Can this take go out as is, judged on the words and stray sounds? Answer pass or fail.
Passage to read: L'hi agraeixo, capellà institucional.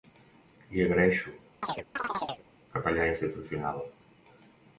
fail